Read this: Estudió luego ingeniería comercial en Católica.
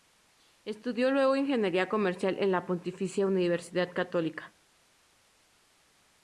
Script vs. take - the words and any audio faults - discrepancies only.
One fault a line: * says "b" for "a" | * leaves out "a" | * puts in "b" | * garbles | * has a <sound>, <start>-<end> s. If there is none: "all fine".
* puts in "la Pontificia Universidad"